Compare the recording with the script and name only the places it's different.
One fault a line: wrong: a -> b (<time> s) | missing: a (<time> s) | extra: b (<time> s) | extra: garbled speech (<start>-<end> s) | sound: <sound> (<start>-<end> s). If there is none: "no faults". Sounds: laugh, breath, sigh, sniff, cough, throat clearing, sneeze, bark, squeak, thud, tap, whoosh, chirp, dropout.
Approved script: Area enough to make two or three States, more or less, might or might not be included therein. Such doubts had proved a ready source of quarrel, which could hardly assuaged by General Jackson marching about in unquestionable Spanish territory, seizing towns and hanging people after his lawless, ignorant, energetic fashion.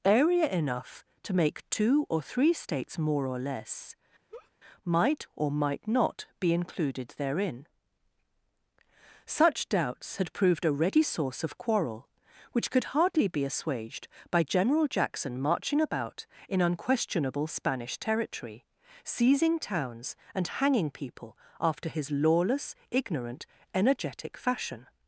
sound: laugh (4.3-4.5 s)
extra: be (13.3 s)